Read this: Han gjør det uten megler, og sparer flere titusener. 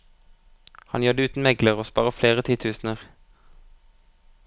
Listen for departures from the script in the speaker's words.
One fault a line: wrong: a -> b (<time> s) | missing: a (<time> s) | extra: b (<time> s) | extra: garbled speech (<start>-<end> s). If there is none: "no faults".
no faults